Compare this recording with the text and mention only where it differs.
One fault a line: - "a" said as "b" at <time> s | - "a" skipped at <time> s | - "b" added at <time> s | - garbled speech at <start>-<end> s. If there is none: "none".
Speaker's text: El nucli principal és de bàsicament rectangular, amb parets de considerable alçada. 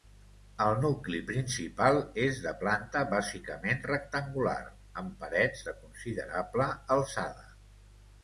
- "planta" added at 2.6 s